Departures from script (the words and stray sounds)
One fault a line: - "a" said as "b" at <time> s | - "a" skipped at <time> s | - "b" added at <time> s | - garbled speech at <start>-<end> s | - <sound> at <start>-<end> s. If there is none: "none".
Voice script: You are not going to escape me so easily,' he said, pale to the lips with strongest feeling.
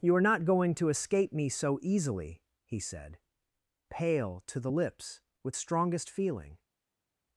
none